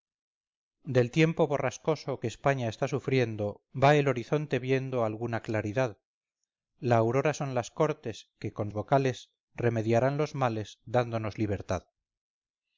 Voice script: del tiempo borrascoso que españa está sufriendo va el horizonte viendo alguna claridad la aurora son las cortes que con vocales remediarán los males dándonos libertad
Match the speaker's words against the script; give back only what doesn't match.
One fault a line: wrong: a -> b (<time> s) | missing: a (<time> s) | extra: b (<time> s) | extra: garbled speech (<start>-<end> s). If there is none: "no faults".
no faults